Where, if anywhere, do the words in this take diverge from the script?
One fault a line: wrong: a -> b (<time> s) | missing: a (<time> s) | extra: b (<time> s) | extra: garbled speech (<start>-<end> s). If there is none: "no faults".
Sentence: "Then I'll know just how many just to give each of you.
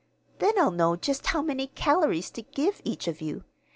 wrong: just -> calories (1.7 s)